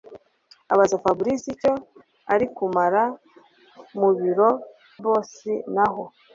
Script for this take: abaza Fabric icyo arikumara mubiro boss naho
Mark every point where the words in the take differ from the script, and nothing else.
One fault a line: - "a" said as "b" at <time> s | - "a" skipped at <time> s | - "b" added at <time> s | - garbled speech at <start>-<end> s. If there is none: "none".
none